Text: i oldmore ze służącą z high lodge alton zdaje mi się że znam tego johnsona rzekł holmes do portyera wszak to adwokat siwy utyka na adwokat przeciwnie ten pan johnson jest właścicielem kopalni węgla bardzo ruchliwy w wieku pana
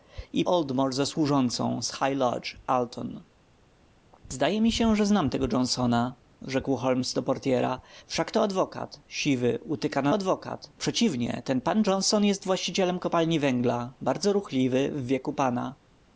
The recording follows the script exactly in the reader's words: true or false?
true